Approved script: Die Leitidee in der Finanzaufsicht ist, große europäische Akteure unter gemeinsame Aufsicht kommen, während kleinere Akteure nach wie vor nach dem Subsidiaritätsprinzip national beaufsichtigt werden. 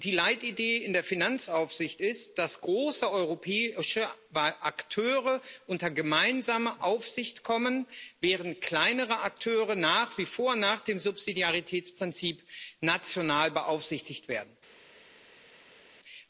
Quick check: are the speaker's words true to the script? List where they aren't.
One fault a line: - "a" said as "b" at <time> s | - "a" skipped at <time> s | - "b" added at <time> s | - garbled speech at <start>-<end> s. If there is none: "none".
- "dass" added at 2.4 s